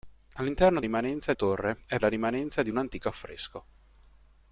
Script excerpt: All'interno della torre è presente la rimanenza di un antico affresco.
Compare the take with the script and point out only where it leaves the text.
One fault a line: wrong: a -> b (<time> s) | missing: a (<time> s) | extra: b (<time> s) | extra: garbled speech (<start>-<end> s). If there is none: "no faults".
wrong: della -> rimanenza (0.8 s)
missing: presente (2.0 s)